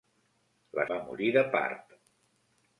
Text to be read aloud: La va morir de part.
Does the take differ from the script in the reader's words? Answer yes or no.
no